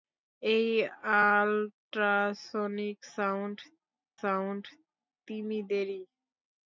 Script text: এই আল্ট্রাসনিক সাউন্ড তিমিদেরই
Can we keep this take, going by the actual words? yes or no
no